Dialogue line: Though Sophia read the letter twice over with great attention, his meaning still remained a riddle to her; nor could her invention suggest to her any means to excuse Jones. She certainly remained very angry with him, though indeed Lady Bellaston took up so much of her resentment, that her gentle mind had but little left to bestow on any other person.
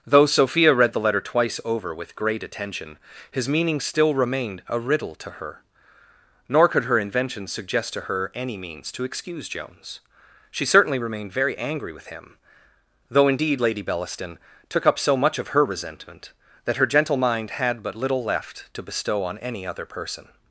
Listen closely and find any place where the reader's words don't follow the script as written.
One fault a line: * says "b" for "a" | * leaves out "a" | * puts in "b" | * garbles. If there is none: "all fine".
all fine